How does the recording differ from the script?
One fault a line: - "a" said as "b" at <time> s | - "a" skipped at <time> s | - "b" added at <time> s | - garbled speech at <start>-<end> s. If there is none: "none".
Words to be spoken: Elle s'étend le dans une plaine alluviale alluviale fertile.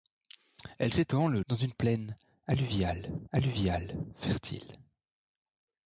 none